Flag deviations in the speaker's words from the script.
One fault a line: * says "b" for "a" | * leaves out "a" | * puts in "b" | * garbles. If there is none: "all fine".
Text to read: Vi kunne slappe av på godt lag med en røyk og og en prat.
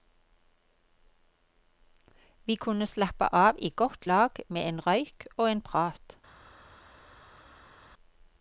* says "i" for "på"
* leaves out "og"